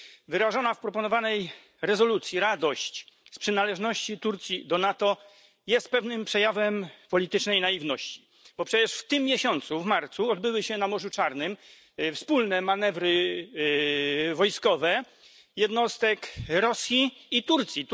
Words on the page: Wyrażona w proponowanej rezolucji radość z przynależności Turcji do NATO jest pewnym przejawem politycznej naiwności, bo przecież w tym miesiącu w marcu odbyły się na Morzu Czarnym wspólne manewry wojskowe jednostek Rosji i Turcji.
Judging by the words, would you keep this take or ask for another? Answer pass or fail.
pass